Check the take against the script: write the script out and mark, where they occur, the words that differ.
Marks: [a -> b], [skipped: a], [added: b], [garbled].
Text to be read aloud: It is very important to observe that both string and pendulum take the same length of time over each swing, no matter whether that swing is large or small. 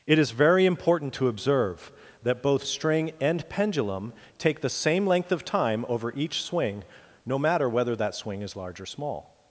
It is very important to observe that both string and pendulum take the same length of time over each swing, no matter whether that swing is large or small.